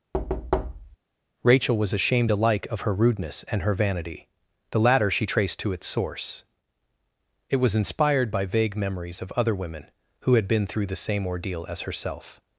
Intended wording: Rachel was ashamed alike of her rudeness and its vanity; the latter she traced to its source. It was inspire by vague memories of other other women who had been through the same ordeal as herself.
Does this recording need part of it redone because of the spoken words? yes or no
yes